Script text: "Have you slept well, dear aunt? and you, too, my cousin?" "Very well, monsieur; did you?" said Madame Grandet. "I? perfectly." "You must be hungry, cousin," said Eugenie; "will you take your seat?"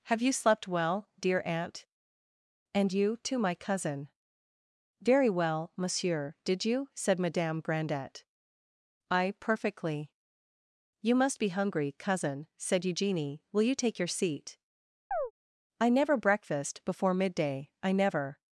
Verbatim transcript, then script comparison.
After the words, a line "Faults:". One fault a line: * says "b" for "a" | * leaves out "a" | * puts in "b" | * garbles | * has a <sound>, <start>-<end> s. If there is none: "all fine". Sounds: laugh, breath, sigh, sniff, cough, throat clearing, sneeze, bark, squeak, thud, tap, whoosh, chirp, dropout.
"Have you slept well, dear aunt? and you, too, my cousin?" "Very well, monsieur; did you?" said Madame Grandet. "I? perfectly." "You must be hungry, cousin," said Eugenie; "will you take your seat?" "I never breakfast before midday; I never
Faults:
* has a chirp, 15.1-15.3 s
* puts in "I never breakfast before midday I never"